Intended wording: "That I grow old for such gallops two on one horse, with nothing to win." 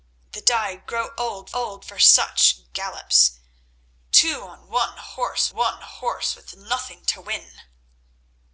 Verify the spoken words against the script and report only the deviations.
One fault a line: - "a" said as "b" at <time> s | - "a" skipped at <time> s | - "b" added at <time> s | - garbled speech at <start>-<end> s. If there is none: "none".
- "old" added at 1.5 s
- "one horse" added at 5.5 s